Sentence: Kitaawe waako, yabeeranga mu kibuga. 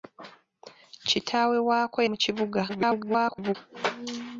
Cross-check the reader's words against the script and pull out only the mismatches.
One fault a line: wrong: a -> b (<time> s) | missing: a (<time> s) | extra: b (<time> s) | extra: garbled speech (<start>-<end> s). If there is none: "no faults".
missing: yabeeranga (2.0 s)
extra: garbled speech (2.7-3.6 s)